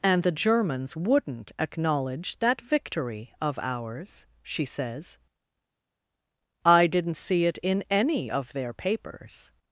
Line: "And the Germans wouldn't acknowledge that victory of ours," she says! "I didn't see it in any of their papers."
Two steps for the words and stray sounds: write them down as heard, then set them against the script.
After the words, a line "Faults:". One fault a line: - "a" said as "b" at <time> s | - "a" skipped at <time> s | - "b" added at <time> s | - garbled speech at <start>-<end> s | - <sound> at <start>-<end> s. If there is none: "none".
"And the Germans wouldn't acknowledge that victory of ours," she says! "I didn't see it in any of their papers."
Faults:
none